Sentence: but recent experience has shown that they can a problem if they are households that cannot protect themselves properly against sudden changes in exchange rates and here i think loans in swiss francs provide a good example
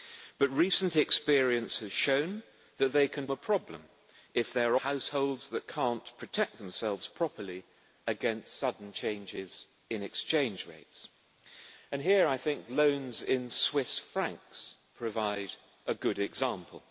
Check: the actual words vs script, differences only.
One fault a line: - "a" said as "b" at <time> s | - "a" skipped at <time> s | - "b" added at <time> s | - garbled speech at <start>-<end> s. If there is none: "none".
none